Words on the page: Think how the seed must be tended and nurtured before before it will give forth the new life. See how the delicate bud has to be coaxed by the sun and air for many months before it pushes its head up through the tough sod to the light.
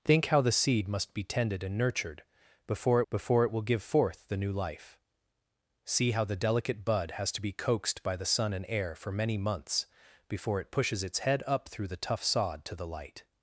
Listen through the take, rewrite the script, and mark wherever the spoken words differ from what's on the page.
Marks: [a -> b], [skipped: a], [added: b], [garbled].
Think how the seed must be tended and nurtured before before it will give forth the new life. See how the delicate bud has to be coaxed by the sun and air for many months before it pushes its head up through the tough sod to the light.